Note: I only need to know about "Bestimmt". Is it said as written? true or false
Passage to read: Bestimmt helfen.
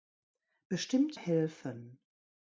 true